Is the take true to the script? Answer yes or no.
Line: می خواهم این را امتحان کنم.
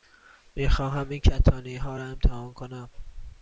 no